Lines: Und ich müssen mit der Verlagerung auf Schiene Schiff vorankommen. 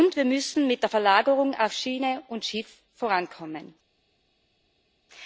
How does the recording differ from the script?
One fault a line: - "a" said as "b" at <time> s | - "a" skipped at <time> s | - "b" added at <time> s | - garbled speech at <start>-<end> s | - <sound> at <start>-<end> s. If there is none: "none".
- "ich" said as "wir" at 0.1 s
- "und" added at 2.3 s